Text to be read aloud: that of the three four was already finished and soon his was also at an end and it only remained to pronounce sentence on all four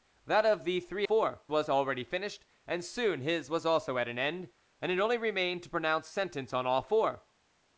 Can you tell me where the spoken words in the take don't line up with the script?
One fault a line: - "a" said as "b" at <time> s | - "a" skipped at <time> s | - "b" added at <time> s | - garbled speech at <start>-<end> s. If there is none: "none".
none